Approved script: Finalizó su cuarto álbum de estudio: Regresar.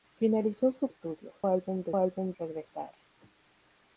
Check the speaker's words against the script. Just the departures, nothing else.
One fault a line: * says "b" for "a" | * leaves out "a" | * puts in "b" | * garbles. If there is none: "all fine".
* says "estudio" for "cuarto"
* says "álbum" for "estudio"